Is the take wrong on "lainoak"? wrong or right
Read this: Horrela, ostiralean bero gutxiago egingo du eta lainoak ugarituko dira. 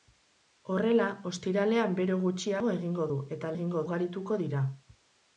wrong